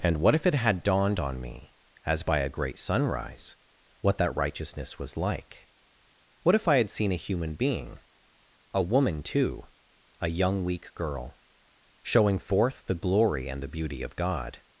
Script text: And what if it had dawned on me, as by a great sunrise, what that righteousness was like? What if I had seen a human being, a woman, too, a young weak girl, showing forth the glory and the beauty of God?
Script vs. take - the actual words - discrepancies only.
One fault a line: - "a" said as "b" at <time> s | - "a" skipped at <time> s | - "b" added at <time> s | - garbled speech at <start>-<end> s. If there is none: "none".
none